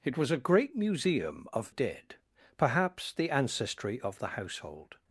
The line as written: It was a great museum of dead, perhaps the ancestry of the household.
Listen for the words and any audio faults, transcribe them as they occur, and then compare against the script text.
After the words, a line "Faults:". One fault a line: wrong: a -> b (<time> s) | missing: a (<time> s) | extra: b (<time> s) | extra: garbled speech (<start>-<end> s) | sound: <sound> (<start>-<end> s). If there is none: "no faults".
It was a great museum of dead, perhaps the ancestry of the household.
Faults:
no faults